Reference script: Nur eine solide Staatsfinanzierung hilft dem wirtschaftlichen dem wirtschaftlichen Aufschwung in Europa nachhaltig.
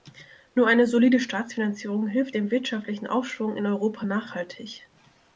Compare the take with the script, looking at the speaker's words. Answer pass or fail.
fail